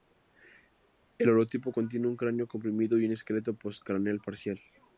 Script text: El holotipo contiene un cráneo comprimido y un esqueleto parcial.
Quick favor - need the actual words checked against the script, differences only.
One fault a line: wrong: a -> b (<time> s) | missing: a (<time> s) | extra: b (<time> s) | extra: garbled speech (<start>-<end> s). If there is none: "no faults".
extra: postcraneal (3.6 s)